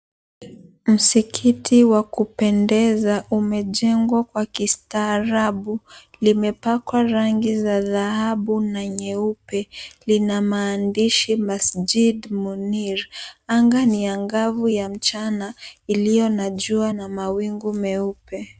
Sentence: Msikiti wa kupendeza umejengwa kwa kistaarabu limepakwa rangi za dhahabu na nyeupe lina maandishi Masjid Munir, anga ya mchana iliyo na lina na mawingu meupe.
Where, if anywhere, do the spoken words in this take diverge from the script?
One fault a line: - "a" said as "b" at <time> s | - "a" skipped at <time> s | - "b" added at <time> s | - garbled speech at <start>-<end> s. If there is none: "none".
- "ni angavu" added at 13.8 s
- "lina" said as "jua" at 16.5 s